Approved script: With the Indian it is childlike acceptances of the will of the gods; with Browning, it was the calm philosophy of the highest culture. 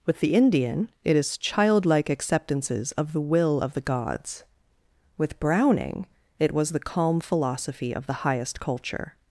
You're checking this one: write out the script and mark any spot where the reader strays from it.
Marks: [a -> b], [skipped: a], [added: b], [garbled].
With the Indian it is childlike acceptances of the will of the gods; with Browning, it was the calm philosophy of the highest culture.